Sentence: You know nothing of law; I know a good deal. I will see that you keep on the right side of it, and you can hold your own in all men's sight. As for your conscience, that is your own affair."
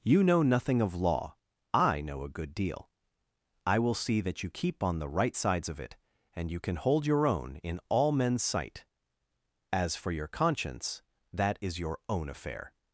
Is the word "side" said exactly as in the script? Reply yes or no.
no